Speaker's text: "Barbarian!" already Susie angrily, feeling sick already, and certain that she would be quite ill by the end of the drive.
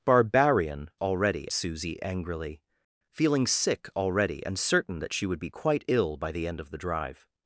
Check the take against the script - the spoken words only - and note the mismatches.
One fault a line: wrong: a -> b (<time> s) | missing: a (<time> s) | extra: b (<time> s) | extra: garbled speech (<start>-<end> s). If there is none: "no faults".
no faults